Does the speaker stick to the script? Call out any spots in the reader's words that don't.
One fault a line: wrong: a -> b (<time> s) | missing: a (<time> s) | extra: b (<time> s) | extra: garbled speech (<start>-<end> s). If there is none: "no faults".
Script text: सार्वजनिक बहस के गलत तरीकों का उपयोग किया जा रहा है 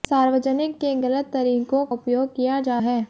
missing: बहस (0.8 s)
missing: का (1.9 s)
missing: रहा (2.8 s)